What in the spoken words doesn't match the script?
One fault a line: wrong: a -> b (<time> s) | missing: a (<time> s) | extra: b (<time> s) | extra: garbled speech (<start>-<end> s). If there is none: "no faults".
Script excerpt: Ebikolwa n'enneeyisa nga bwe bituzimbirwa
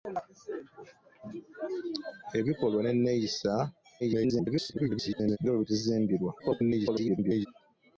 extra: garbled speech (4.0-5.4 s)
extra: garbled speech (6.4-7.5 s)